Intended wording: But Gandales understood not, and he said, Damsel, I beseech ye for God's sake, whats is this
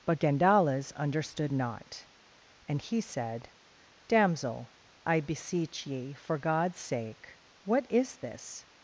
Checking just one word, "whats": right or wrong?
wrong